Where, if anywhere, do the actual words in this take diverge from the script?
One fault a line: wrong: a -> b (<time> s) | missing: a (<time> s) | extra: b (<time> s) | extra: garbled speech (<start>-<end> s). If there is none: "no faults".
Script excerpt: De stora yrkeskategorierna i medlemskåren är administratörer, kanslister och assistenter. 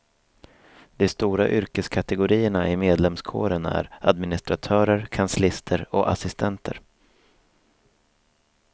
no faults